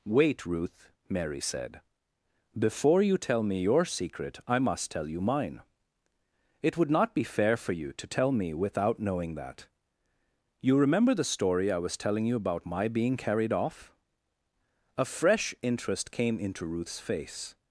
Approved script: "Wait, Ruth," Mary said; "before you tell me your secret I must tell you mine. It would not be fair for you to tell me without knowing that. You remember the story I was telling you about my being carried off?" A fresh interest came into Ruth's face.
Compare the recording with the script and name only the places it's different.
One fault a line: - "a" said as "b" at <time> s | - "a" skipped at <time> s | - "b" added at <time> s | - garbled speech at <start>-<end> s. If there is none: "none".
none